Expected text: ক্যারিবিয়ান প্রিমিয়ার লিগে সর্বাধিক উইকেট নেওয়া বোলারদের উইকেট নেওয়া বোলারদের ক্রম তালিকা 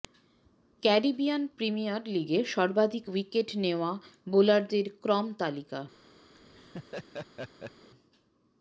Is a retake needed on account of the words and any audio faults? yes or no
yes